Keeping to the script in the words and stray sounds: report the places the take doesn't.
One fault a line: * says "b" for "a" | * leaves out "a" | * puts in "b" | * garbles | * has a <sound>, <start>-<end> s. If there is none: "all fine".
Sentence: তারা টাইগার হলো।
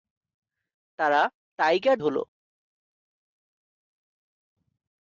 all fine